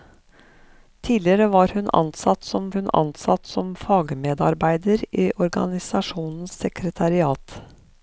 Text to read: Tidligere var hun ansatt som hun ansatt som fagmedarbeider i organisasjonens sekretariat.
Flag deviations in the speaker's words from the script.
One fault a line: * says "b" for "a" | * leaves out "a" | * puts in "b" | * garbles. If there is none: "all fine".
all fine